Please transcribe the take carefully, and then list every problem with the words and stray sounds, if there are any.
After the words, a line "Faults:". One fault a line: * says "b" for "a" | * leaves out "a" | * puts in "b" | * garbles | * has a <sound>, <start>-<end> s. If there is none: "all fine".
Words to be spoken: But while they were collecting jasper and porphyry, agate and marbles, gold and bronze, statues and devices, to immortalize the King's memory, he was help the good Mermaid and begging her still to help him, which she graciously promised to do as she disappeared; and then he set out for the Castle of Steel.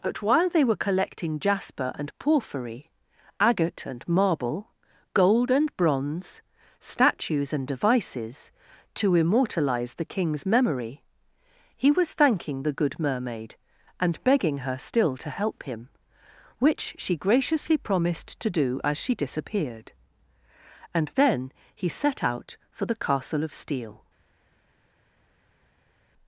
But while they were collecting jasper and porphyry, agate and marble, gold and bronze, statues and devices, to immortalize the King's memory, he was thanking the good Mermaid and begging her still to help him, which she graciously promised to do as she disappeared; and then he set out for the Castle of Steel.
Faults:
* says "marble" for "marbles"
* says "thanking" for "help"